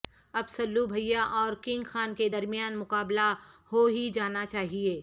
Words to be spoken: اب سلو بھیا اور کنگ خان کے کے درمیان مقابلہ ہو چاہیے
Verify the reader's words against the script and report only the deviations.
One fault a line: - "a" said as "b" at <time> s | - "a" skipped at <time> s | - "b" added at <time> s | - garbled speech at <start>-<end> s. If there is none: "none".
- "کے" skipped at 2.3 s
- "ہی جانا" added at 3.9 s